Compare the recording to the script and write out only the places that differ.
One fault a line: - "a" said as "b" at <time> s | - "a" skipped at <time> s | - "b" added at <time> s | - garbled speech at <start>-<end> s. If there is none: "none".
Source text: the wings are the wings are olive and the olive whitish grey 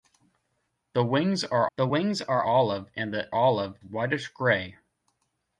none